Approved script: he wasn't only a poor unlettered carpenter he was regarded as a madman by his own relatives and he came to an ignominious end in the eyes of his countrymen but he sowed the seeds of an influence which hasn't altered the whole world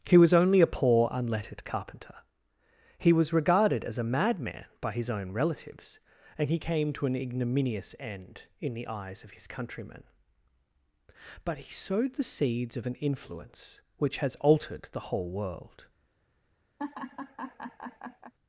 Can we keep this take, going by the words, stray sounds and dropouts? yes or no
no